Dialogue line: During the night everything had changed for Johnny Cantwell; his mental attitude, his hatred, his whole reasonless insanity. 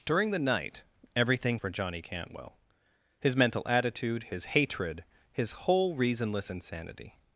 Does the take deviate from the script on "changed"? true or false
true